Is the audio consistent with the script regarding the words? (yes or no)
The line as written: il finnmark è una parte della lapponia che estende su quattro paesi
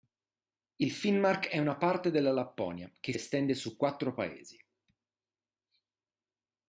yes